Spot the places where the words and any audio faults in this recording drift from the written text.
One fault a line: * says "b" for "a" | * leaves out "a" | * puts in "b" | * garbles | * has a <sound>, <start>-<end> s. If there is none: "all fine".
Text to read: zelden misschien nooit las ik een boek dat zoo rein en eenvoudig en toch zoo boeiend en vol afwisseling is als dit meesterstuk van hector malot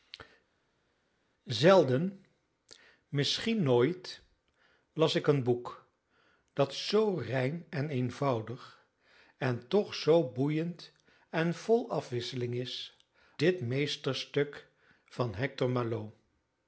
* leaves out "als"